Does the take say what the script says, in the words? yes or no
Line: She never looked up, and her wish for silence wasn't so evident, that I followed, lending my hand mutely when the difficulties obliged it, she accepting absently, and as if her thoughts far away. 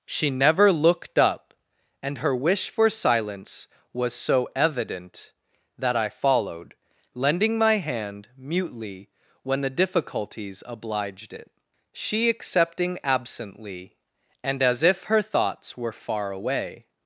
no